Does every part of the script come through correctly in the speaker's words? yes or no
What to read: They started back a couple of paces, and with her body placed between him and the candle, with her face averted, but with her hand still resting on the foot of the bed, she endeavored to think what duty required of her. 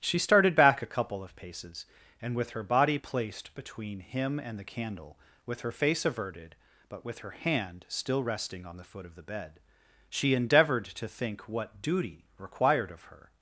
no